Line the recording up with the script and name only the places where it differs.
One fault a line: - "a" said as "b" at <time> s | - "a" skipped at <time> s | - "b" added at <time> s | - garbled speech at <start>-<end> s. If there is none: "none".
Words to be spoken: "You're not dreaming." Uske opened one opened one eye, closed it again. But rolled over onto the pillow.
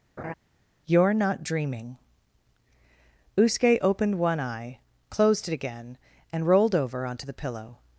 - "opened one" skipped at 4.4 s
- "But" said as "And" at 6.3 s